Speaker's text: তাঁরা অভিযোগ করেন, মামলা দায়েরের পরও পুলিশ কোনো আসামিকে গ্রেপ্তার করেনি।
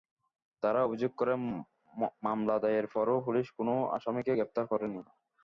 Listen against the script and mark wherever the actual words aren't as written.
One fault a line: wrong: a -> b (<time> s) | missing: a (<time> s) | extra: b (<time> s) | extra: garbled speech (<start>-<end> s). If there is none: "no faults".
no faults